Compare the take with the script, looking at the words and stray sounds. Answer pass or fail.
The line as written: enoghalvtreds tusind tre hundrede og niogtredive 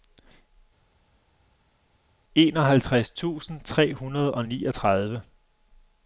pass